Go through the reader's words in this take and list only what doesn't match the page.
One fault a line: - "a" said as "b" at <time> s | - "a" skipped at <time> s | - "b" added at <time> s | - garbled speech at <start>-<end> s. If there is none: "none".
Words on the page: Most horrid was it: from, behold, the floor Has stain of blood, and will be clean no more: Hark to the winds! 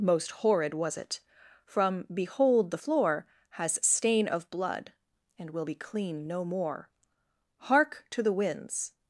none